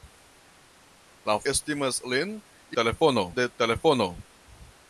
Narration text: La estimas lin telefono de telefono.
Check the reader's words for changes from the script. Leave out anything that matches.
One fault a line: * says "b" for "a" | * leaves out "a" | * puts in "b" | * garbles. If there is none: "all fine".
all fine